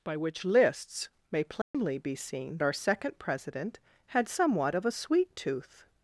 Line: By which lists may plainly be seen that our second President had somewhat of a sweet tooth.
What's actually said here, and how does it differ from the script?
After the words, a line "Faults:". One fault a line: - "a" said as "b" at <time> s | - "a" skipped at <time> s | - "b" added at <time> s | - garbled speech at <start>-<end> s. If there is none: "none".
By which lists may plainly be seen our second President had somewhat of a sweet tooth.
Faults:
- "that" skipped at 2.6 s